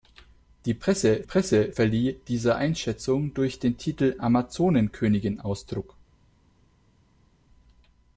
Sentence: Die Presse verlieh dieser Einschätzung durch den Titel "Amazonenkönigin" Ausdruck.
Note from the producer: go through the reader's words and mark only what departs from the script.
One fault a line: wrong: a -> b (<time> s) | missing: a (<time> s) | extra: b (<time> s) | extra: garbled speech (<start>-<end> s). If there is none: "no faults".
extra: Presse (1.2 s)